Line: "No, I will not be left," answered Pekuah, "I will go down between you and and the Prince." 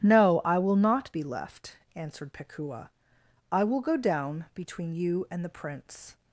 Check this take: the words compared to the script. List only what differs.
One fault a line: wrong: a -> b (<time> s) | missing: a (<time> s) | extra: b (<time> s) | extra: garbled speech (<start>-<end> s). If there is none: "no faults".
missing: and (5.4 s)